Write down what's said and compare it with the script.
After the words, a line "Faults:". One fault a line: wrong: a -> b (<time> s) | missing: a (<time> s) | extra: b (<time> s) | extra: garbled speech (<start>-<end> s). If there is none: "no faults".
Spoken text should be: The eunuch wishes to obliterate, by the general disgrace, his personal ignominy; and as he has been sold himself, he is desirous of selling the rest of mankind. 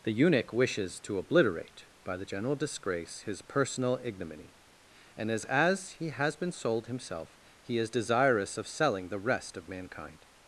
The eunuch wishes to obliterate, by the general disgrace, his personal ignominy; and as as he has been sold himself, he is desirous of selling the rest of mankind.
Faults:
extra: as (5.4 s)